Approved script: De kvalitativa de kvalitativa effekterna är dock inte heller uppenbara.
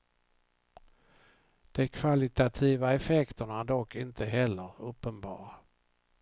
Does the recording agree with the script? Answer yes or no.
no